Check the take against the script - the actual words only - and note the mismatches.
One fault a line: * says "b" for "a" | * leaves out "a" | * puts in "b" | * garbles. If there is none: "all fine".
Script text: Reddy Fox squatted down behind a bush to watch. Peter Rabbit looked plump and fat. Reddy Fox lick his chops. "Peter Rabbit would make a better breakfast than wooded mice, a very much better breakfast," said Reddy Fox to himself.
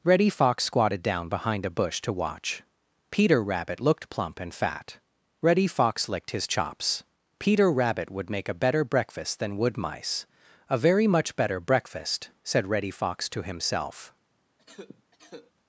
* says "licked" for "lick"
* says "wood" for "wooded"